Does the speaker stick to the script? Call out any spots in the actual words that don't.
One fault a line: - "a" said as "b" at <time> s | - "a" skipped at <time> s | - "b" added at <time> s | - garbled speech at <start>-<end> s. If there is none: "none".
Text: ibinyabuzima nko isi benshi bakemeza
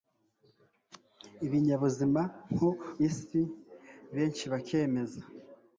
none